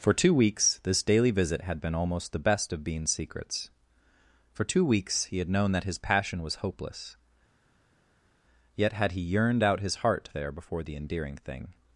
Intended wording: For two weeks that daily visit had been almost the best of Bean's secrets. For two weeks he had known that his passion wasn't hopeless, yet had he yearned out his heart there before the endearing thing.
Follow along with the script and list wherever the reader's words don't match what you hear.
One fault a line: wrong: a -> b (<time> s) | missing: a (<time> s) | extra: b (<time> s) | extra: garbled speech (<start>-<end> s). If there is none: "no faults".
wrong: that -> this (0.8 s)
wrong: wasn't -> was (6.4 s)